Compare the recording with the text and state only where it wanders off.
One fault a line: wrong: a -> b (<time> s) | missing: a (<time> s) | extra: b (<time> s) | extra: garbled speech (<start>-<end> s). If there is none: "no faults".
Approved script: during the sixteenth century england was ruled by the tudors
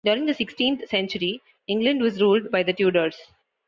no faults